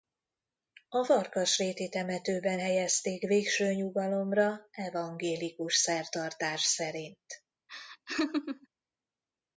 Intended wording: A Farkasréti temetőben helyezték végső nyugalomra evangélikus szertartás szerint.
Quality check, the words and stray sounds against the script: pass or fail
fail